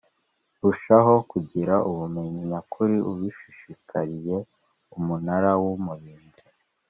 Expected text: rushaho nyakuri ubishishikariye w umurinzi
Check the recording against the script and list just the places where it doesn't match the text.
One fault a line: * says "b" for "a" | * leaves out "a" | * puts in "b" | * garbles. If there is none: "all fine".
* puts in "kugira ubumenyi"
* puts in "umunara"